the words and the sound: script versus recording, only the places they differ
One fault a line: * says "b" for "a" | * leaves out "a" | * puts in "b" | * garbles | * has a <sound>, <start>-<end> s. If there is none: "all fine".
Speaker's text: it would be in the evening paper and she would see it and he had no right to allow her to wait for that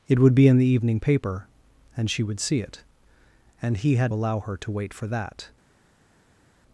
* leaves out "no right to"